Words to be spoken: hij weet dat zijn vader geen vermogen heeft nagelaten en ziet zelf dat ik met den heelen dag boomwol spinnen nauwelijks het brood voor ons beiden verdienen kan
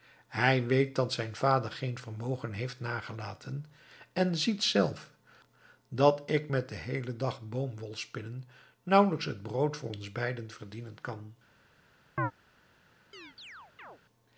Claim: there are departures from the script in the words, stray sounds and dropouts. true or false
true